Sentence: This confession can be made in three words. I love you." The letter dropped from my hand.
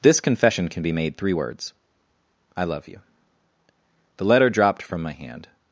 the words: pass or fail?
fail